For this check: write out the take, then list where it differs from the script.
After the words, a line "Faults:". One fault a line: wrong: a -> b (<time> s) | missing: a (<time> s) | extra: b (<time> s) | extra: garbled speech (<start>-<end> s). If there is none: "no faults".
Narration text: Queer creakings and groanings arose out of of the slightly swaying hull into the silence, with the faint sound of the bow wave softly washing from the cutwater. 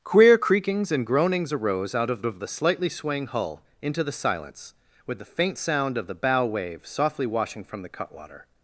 Queer creakings and groanings arose out of of the slightly swaying hull into the silence, with the faint sound of the bow wave softly washing from the cutwater.
Faults:
no faults